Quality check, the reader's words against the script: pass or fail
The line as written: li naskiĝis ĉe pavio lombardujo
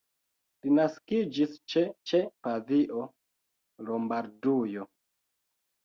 fail